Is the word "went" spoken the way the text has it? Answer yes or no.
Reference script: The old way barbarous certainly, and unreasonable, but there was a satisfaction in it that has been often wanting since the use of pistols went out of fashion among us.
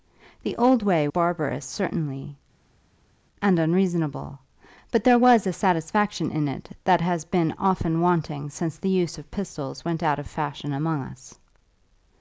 yes